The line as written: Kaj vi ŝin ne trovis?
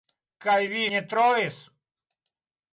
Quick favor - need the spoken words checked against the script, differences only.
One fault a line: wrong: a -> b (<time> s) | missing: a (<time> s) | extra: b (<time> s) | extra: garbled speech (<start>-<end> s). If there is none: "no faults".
missing: ŝin (0.8 s)